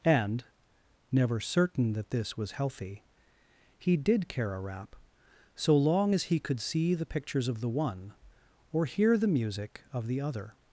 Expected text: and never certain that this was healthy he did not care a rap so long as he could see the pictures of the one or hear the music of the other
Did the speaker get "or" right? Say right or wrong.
right